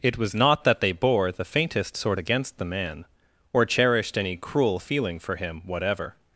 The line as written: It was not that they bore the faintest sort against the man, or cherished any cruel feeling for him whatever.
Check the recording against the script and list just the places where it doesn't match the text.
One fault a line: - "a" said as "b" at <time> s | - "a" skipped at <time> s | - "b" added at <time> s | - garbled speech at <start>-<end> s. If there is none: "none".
none